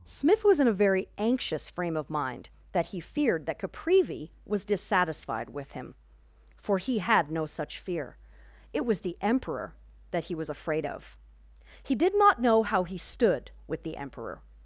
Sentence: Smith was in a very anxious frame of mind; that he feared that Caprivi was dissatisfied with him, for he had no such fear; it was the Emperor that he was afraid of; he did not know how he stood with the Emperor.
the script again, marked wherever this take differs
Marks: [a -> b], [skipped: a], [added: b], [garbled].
Smith was in a very anxious frame of mind; that he feared that Caprivi was dissatisfied with him, for he had no such fear; it was the Emperor that he was afraid of; he did not know how he stood with the Emperor.